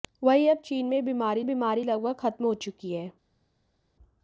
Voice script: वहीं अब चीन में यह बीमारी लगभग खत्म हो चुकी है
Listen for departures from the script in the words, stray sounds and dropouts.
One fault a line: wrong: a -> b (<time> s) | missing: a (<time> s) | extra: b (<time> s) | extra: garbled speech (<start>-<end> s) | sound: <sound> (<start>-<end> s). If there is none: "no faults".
extra: बीमारी (1.4 s)